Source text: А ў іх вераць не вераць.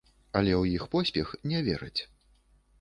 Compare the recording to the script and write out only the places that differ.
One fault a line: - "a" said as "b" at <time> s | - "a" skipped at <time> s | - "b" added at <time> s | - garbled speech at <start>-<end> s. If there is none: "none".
- "А" said as "Але" at 0.4 s
- "вераць" said as "поспех" at 0.9 s